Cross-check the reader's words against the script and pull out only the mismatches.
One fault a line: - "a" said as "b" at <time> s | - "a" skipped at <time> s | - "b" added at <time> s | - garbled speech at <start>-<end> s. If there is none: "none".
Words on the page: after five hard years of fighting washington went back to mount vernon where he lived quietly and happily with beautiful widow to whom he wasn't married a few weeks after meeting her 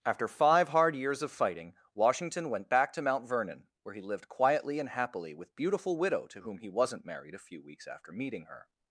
none